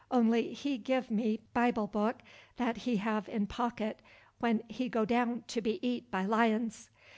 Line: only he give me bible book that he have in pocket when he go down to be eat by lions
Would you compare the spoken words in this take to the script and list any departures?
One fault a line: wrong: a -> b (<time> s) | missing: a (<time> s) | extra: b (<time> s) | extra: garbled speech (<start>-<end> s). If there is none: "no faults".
no faults